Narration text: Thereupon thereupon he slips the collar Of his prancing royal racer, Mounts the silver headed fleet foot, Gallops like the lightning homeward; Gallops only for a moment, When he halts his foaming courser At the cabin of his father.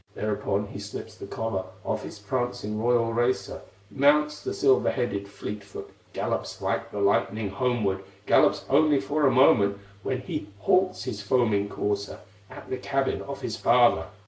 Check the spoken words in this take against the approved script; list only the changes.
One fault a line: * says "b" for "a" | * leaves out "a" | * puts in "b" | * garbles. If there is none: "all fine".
* leaves out "thereupon"